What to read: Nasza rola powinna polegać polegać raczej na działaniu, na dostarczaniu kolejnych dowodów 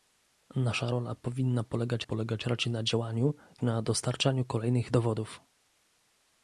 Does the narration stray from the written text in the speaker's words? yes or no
no